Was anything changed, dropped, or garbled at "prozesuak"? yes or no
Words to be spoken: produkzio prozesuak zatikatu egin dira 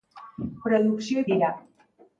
yes